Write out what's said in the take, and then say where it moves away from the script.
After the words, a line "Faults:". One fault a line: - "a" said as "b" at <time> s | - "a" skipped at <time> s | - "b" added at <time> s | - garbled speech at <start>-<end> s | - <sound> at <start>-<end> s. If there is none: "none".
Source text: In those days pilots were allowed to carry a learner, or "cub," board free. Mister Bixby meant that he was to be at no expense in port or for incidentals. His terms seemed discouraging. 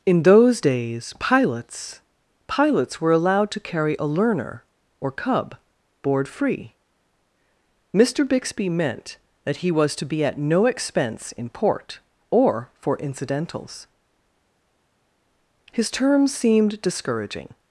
In those days pilots pilots were allowed to carry a learner, or "cub," board free. Mister Bixby meant that he was to be at no expense in port or for incidentals. His terms seemed discouraging.
Faults:
- "pilots" added at 2.5 s